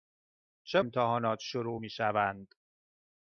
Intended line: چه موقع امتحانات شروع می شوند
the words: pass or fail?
fail